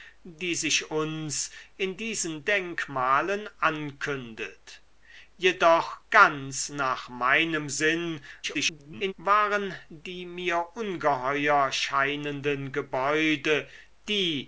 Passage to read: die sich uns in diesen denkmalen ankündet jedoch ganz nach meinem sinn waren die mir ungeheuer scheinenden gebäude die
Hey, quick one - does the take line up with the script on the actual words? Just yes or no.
no